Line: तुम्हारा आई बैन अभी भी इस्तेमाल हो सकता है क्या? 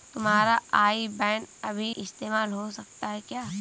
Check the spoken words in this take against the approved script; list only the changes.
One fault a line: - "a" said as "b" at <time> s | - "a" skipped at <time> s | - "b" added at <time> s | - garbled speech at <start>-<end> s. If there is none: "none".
- "भी" skipped at 1.9 s